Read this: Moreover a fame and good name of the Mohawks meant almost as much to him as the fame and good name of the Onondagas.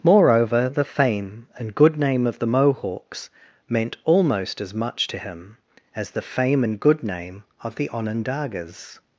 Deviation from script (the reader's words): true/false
true